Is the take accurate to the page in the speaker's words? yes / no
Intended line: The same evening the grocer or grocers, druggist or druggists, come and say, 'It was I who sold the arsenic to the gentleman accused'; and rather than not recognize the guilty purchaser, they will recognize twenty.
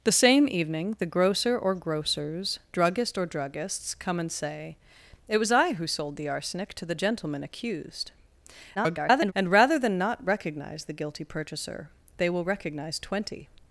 no